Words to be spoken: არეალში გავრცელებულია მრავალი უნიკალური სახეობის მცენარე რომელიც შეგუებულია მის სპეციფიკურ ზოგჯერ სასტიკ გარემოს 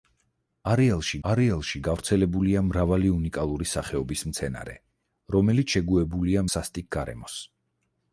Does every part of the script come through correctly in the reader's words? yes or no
no